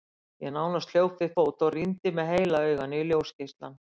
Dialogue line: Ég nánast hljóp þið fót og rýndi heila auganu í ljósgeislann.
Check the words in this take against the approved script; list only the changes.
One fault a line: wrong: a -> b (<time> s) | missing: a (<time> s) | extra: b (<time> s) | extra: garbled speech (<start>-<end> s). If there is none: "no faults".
wrong: þið -> við (1.2 s)
extra: með (2.2 s)